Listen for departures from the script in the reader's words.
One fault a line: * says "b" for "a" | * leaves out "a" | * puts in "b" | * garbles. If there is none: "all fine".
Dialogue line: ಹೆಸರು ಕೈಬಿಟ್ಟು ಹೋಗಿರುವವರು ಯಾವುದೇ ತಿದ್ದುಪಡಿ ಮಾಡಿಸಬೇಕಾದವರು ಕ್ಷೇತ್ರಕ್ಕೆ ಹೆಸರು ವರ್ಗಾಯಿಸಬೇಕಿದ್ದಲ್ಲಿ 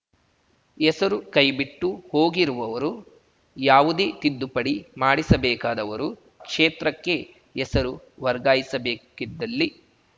all fine